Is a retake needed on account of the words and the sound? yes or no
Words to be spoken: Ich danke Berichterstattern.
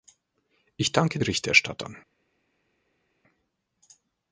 no